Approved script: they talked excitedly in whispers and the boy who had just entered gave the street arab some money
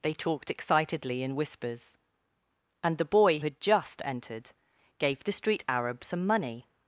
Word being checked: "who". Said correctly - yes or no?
no